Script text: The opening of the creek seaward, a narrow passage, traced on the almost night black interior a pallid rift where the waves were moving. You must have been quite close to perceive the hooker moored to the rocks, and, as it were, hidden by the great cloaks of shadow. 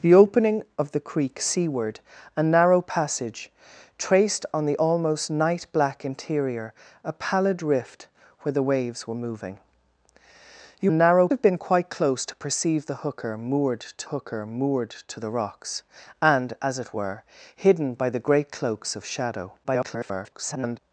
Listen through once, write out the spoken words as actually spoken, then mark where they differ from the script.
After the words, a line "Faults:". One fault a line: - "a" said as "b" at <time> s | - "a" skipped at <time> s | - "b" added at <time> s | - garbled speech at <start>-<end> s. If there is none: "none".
The opening of the creek seaward, a narrow passage, traced on the almost night black interior a pallid rift where the waves were moving. You narrow have been quite close to perceive the hooker moored to hooker moored to the rocks, and, as it were, hidden by the great cloaks of shadow. [garbled]
Faults:
- "must" said as "narrow" at 10.9 s
- "hooker moored to" added at 14.1 s
- garbled speech at 19.6-20.8 s